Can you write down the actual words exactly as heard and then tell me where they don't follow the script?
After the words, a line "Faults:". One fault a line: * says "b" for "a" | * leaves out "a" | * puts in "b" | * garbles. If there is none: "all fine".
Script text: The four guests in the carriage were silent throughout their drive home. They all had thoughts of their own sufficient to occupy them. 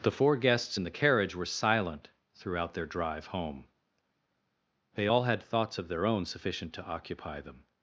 The four guests in the carriage were silent throughout their drive home. They all had thoughts of their own sufficient to occupy them.
Faults:
all fine